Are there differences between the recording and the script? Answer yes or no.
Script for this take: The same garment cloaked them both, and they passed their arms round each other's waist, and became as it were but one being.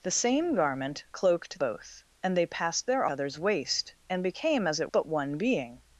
yes